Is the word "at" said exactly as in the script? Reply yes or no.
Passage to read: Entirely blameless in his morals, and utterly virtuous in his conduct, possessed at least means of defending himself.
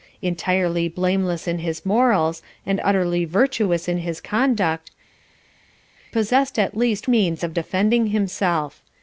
yes